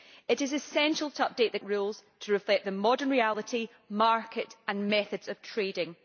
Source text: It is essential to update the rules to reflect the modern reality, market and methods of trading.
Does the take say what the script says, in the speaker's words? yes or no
yes